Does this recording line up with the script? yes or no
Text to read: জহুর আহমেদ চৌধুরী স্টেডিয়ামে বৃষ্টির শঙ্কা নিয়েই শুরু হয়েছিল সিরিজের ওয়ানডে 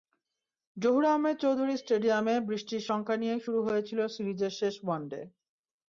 no